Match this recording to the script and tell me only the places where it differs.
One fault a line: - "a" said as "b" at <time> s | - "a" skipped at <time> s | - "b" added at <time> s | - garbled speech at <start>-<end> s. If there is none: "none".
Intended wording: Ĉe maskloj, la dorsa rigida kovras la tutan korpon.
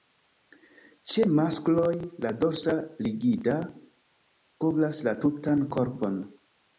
none